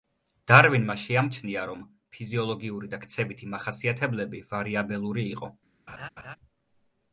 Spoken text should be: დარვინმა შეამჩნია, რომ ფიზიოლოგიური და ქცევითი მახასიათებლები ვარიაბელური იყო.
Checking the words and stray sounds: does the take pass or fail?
fail